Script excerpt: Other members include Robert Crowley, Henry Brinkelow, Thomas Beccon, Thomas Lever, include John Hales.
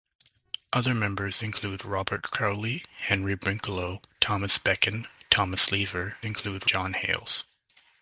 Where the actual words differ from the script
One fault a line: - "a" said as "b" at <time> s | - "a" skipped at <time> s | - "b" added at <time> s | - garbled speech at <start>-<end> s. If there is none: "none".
none